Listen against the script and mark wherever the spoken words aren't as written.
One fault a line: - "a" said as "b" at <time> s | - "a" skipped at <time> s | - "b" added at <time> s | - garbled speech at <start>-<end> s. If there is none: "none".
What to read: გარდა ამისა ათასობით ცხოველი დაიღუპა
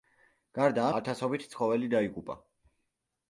- "ამისა" skipped at 0.8 s